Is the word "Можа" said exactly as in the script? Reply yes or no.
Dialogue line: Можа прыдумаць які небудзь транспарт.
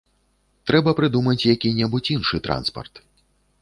no